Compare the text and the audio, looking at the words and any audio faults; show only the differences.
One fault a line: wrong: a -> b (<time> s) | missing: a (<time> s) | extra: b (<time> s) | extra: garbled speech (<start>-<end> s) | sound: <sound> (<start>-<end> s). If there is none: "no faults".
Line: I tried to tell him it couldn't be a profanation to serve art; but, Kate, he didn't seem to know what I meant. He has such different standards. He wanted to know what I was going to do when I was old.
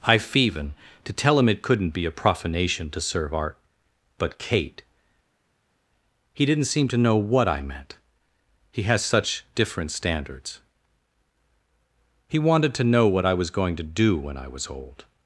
wrong: tried -> feven (0.2 s)